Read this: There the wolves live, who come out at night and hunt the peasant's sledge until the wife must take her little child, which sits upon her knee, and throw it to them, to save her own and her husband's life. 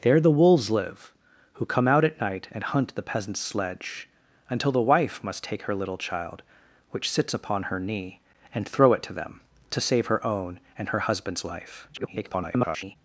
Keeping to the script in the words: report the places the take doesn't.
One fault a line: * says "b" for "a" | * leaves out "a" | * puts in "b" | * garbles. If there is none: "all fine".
* garbles